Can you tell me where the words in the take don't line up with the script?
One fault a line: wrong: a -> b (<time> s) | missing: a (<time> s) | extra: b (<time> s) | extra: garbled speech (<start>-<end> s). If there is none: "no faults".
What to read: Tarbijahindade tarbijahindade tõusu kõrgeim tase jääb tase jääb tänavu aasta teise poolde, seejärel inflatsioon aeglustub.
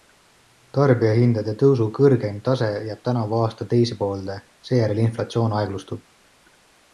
missing: tarbijahindade (1.5 s)
missing: tase jääb (3.0 s)